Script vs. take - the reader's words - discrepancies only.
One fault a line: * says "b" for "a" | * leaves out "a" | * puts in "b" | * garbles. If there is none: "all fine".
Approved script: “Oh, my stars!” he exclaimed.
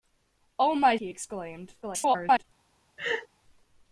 * leaves out "stars"
* garbles